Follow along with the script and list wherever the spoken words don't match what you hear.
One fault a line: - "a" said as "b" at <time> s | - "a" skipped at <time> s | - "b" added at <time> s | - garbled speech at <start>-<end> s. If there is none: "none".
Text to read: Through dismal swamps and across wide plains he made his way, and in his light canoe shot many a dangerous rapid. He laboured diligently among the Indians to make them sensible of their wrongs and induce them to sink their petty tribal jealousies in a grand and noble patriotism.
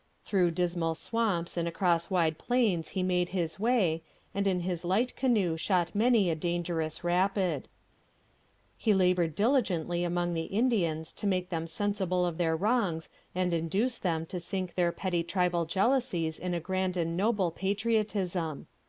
none